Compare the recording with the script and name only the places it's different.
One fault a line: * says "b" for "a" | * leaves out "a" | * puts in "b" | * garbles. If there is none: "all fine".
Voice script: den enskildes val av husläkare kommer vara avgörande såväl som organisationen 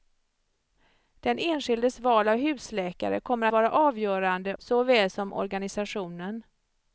all fine